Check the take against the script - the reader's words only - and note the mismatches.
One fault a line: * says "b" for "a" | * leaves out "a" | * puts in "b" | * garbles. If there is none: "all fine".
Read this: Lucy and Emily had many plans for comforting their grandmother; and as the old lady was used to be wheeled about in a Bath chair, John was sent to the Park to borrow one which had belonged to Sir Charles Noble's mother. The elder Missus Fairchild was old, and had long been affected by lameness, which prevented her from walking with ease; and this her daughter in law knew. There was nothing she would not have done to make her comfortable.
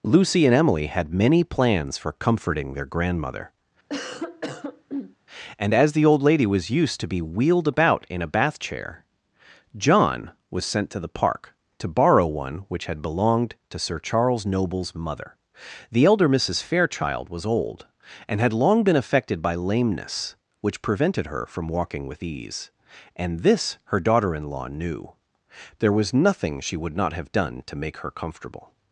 all fine